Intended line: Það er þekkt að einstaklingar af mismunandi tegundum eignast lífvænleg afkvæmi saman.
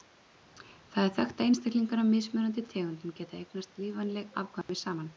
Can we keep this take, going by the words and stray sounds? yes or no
no